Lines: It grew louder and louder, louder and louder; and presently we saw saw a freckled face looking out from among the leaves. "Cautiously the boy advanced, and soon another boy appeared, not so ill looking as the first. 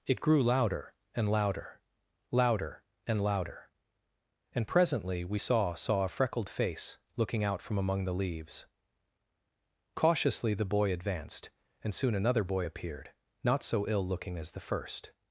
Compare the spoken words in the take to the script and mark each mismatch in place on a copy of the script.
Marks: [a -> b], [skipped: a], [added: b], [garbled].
It grew louder and louder, louder and louder; and presently we saw saw a freckled face looking out from among the leaves. "Cautiously the boy advanced, and soon another boy appeared, not so ill looking as the first.